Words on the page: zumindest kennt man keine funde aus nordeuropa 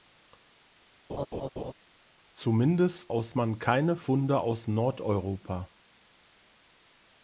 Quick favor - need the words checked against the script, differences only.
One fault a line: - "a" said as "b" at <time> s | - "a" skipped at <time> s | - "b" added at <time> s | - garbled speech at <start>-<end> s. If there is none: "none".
- "kennt" said as "aus" at 3.1 s